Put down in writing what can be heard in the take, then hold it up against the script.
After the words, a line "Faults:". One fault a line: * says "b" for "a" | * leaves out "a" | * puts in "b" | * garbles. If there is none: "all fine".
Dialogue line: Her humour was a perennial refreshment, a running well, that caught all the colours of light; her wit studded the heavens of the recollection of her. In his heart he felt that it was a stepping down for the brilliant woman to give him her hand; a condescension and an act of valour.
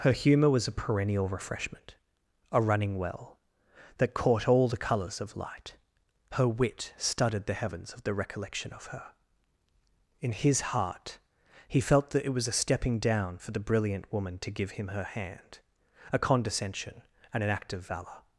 Her humour was a perennial refreshment, a running well, that caught all the colours of light; her wit studded the heavens of the recollection of her. In his heart he felt that it was a stepping down for the brilliant woman to give him her hand; a condescension and an act of valour.
Faults:
all fine